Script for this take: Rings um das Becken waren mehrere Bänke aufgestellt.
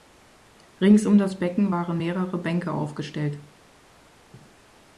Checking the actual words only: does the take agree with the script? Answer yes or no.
yes